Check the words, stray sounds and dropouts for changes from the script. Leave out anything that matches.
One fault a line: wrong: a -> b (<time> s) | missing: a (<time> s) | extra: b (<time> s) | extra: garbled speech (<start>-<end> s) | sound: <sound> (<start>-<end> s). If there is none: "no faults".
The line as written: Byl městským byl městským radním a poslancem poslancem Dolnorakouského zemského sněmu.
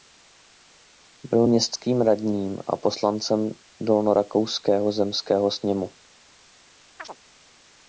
missing: byl městským (2.0 s)
missing: poslancem (3.5 s)
sound: chirp (7.0-7.2 s)